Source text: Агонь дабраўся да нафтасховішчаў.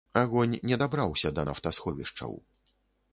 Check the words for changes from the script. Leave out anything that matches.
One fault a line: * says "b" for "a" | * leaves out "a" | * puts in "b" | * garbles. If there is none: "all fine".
* puts in "не"